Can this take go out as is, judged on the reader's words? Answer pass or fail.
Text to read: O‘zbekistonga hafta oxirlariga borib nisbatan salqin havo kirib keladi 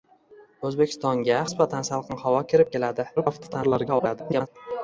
fail